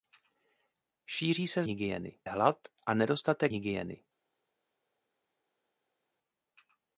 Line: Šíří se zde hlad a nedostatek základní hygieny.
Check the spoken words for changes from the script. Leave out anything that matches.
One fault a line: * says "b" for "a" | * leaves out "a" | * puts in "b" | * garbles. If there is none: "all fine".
* says "hygieny" for "zde"
* leaves out "základní"